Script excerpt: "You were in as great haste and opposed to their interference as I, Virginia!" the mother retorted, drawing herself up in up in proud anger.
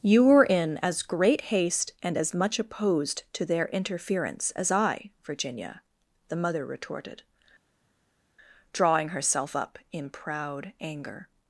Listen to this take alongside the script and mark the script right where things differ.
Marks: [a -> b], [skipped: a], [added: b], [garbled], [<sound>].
"You were in as great haste and [added: as much] opposed to their interference as I, Virginia!" the mother retorted, drawing herself up in [skipped: up in] proud anger.